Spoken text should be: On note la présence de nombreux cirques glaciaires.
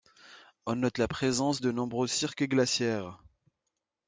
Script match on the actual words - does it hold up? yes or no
yes